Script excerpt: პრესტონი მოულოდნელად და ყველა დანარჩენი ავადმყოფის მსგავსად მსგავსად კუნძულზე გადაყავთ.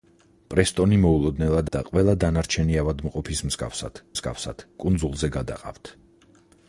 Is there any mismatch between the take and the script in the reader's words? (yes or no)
no